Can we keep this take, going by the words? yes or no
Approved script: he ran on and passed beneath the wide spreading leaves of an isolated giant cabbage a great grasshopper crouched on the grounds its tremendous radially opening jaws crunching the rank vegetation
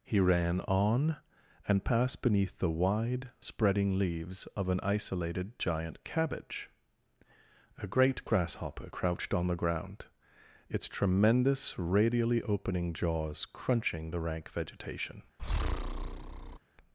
no